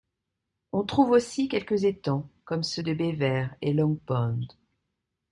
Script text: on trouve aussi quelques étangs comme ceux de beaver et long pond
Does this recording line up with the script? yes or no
yes